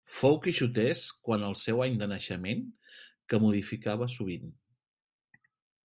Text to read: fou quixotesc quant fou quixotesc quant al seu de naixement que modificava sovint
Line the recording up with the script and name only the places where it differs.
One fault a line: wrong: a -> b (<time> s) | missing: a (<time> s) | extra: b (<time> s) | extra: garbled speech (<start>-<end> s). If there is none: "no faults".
missing: fou quixotesc quant (1.4 s)
extra: any (1.9 s)